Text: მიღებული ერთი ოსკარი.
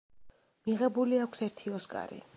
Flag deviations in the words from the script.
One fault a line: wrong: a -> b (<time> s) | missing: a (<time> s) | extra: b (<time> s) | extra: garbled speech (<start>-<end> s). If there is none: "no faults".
extra: აქვს (1.3 s)